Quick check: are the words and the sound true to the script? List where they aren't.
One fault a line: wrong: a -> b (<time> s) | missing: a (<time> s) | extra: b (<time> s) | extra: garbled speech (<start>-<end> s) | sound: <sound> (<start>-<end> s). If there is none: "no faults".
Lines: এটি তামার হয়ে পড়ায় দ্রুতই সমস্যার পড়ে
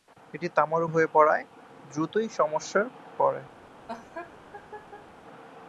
sound: laugh (3.9-5.1 s)